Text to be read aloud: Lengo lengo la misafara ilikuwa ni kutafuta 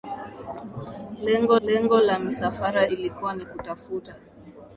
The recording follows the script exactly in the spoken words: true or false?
true